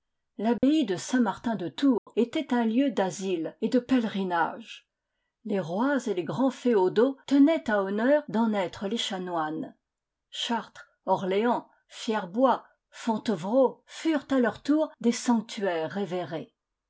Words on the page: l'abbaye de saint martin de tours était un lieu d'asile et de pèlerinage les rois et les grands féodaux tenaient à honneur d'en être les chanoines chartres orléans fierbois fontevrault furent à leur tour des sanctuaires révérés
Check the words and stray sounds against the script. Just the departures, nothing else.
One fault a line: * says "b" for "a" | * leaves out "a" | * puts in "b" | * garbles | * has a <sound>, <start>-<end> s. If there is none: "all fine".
* has a dropout, 0.6-0.6 s
* has a dropout, 2.0-2.1 s